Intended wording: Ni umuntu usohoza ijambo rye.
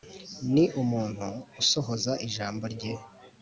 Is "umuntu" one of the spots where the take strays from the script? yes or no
no